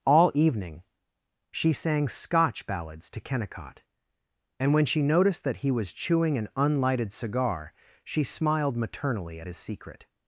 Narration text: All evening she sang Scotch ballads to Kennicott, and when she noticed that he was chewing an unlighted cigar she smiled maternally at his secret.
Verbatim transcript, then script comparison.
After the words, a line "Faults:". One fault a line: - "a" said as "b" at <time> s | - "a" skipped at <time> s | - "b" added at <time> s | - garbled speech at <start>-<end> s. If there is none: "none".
All evening she sang Scotch ballads to Kennicott, and when she noticed that he was chewing an unlighted cigar she smiled maternally at his secret.
Faults:
none